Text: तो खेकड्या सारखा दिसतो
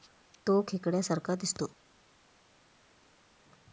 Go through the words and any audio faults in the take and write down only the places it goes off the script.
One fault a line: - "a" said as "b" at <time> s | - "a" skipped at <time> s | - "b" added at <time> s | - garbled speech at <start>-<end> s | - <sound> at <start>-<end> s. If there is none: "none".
none